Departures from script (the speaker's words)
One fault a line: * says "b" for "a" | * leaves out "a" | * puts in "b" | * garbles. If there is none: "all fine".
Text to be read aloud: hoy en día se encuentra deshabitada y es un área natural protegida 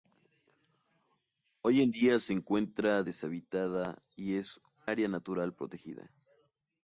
* leaves out "un"